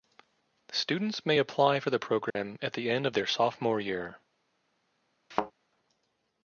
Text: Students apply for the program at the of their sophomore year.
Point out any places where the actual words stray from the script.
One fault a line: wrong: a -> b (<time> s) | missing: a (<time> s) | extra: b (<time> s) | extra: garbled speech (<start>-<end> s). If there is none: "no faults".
extra: may (1.3 s)
extra: end (2.9 s)